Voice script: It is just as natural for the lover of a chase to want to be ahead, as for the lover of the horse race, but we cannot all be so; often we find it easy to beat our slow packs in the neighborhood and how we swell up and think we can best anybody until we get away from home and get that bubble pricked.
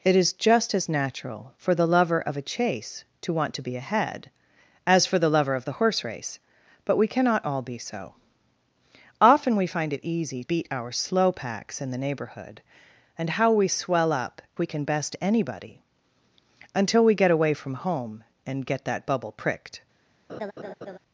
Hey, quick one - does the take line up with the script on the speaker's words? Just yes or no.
no